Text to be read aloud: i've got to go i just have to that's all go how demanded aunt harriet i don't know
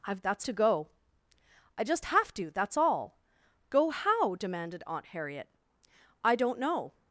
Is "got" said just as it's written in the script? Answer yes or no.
no